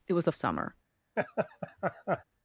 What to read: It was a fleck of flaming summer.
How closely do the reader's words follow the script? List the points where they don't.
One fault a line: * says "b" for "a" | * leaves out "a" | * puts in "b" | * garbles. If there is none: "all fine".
* leaves out "fleck of flaming"